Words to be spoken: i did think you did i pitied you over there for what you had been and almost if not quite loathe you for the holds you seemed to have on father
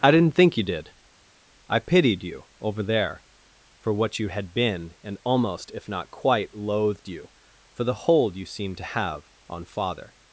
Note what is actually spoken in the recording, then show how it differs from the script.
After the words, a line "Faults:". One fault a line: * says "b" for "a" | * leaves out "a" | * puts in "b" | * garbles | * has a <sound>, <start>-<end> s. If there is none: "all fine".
i didn't think you did i pitied you over there for what you had been and almost if not quite loathed you for the hold you seemed to have on father
Faults:
* says "didn't" for "did"
* says "loathed" for "loathe"
* says "hold" for "holds"